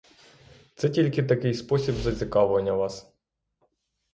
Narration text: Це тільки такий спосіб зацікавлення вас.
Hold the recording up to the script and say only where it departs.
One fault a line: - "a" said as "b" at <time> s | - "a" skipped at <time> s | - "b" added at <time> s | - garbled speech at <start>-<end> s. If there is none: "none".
none